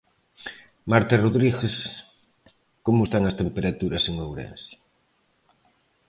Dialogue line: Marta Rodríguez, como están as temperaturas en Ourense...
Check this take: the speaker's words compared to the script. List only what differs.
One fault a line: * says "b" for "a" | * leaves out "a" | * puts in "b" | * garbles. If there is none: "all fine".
all fine